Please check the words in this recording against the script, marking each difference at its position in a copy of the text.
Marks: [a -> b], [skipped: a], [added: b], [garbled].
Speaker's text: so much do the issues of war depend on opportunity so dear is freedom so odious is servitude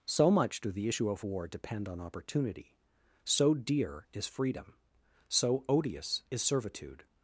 so much do the [issues -> issue] of war depend on opportunity so dear is freedom so odious is servitude